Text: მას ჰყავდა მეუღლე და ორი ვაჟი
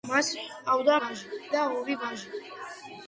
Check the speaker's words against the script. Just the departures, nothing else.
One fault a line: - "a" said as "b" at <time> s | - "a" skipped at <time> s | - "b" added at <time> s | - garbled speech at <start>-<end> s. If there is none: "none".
- "მეუღლე" said as "ვაჟი" at 1.0 s